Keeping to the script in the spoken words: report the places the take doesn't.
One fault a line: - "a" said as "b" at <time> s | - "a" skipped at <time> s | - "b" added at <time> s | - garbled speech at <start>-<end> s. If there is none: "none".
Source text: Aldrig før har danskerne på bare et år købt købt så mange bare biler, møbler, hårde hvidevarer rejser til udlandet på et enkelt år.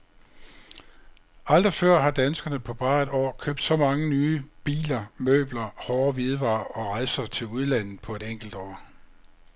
- "købt" skipped at 3.6 s
- "bare" said as "nye" at 4.1 s
- "og" added at 6.6 s